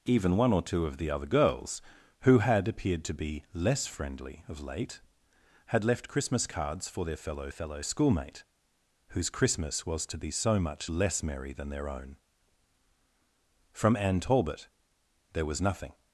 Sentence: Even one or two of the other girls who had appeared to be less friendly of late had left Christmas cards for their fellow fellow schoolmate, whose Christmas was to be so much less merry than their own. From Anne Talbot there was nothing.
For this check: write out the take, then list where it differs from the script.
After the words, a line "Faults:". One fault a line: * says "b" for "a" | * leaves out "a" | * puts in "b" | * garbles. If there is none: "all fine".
Even one or two of the other girls who had appeared to be less friendly of late had left Christmas cards for their fellow fellow schoolmate, whose Christmas was to be so much less merry than their own. From Anne Talbot there was nothing.
Faults:
all fine